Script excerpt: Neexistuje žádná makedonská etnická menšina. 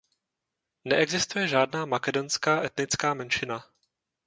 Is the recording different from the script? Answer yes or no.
no